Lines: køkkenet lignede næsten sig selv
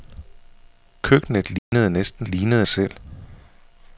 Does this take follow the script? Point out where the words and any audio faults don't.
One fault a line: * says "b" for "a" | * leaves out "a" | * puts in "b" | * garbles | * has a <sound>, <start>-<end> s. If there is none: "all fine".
* has a dropout, 1.6-1.7 s
* says "lignede" for "sig"